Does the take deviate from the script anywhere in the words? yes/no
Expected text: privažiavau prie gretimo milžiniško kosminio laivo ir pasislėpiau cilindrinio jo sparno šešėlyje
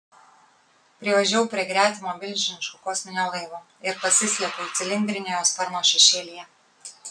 no